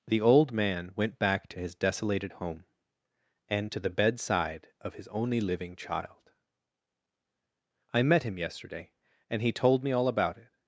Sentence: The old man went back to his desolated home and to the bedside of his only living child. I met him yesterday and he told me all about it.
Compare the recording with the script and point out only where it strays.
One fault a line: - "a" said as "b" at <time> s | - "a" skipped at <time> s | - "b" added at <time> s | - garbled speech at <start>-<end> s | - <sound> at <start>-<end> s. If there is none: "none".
none